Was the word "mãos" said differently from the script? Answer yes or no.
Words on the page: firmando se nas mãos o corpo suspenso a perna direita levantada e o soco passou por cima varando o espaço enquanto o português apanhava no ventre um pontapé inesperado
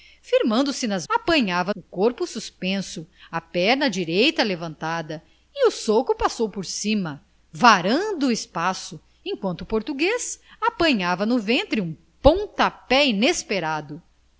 yes